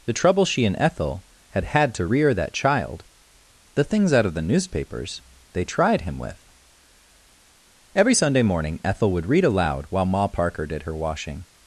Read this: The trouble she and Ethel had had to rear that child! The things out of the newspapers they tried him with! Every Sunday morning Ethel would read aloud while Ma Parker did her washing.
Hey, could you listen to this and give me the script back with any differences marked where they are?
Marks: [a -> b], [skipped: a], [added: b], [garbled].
The trouble she and Ethel had had to rear that child! The things out of the newspapers they tried him with! Every Sunday morning Ethel would read aloud while Ma Parker did her washing.